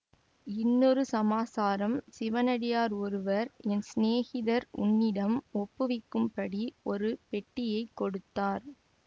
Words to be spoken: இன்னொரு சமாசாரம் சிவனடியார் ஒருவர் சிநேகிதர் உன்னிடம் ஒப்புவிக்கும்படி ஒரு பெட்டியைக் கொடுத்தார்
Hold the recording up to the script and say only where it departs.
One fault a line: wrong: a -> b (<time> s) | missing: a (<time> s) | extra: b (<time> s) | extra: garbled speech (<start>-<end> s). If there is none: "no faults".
extra: என் (3.7 s)